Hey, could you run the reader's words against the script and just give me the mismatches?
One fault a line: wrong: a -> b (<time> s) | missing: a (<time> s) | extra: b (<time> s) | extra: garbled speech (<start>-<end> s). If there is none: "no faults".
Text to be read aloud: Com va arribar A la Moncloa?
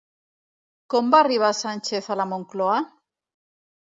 extra: Sánchez (1.6 s)